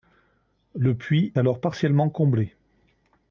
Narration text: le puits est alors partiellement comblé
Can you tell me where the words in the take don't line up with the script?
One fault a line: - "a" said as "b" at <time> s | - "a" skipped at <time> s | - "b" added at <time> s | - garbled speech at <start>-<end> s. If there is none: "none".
- "est" skipped at 1.3 s